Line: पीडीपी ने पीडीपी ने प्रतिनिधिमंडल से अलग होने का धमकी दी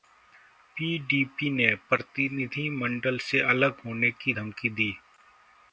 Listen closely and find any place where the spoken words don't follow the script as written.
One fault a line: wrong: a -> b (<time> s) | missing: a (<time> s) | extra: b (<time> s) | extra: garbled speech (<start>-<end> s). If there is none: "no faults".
missing: पीडीपी ने (1.7 s)
wrong: का -> की (4.1 s)